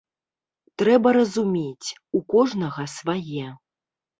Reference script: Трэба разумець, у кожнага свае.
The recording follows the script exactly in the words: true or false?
true